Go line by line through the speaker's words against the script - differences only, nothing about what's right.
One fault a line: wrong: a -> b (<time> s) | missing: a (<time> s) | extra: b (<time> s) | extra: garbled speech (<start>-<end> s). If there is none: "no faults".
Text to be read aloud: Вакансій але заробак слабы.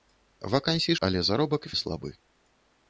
no faults